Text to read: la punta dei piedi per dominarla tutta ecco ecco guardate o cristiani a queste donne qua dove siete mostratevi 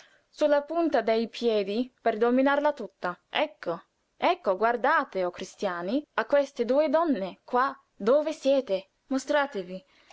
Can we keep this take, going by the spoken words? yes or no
no